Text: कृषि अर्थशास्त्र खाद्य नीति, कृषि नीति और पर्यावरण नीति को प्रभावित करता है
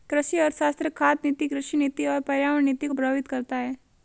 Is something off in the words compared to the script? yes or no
no